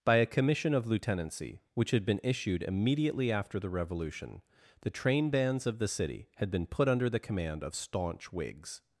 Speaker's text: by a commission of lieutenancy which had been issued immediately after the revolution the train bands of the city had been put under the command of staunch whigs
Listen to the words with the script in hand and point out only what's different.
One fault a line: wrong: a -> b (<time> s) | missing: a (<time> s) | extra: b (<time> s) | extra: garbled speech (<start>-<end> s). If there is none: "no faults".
no faults